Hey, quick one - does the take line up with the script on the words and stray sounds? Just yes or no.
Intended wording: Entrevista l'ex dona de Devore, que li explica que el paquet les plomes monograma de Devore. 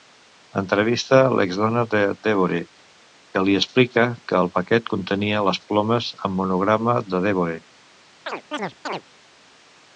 no